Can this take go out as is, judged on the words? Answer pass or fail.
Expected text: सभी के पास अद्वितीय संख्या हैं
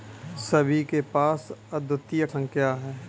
pass